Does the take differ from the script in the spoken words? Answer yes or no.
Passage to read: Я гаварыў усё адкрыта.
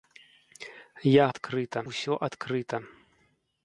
yes